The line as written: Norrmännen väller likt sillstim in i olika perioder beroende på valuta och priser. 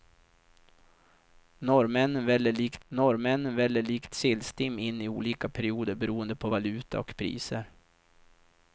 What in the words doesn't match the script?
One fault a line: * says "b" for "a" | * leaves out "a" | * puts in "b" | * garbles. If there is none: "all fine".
* puts in "norrmännen väller likt"